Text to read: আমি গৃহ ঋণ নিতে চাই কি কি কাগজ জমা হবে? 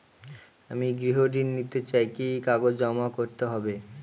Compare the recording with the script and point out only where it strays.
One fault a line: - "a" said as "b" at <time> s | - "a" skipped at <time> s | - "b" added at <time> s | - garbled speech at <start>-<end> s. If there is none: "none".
- "করতে" added at 3.2 s